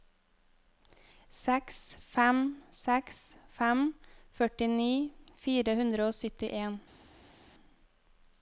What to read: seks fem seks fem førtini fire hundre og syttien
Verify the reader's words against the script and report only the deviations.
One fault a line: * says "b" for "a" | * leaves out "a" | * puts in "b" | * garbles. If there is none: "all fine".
all fine